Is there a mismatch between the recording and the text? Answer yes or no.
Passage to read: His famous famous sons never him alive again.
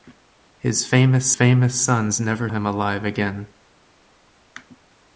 no